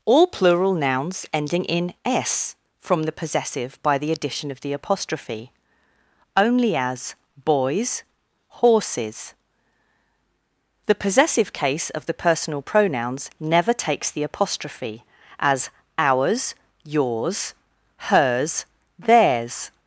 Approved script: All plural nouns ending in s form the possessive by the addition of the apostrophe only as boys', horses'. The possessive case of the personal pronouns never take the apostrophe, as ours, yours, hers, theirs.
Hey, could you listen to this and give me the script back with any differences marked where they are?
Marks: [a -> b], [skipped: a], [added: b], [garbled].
All plural nouns ending in s [form -> from] the possessive by the addition of the apostrophe only as boys', horses'. The possessive case of the personal pronouns never [take -> takes] the apostrophe, as ours, yours, hers, theirs.